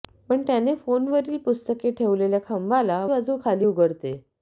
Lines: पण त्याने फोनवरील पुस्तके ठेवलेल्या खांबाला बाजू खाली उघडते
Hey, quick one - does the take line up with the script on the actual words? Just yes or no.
yes